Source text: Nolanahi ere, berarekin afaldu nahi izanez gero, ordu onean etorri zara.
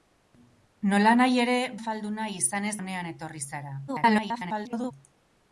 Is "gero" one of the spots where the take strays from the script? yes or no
yes